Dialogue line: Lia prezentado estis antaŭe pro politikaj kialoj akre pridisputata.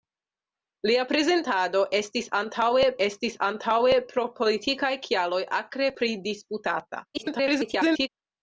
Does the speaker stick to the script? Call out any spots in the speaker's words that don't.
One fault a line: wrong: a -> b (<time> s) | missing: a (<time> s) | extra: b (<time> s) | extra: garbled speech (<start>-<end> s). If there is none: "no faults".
extra: estis antaŭe (3.1 s)
extra: garbled speech (7.1-8.1 s)